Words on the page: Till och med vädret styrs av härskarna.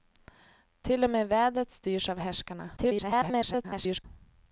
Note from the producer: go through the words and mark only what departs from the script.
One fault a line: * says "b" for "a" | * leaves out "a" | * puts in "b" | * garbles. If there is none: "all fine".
* garbles